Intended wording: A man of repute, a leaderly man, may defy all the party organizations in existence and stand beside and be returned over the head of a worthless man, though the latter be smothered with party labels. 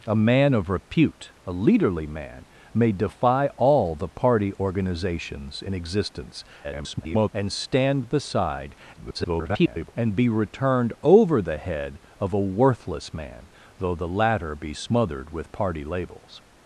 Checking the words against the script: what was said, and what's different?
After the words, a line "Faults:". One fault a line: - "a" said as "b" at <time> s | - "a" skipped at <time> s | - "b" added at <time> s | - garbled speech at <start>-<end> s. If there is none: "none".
A man of repute, a leaderly man, may defy all the party organizations in existence [garbled] and stand beside [garbled] and be returned over the head of a worthless man, though the latter be smothered with party labels.
Faults:
- garbled speech at 6.6-7.3 s
- garbled speech at 8.9-9.9 s